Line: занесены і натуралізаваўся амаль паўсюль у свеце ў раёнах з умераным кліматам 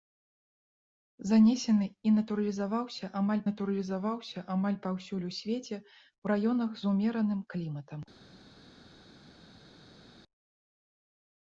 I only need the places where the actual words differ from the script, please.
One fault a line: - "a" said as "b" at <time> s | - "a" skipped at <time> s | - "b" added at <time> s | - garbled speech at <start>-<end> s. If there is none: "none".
- "натуралізаваўся амаль" added at 3.5 s